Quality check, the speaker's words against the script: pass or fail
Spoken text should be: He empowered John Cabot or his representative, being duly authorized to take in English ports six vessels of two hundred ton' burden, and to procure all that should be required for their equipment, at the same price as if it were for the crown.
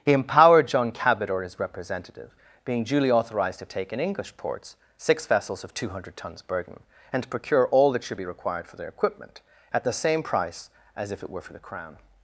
fail